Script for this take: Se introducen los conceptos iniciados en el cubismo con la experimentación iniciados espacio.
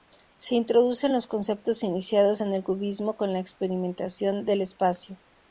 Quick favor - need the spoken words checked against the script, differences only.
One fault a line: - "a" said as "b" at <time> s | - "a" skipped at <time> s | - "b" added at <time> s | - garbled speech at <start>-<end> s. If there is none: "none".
- "iniciados" said as "del" at 4.4 s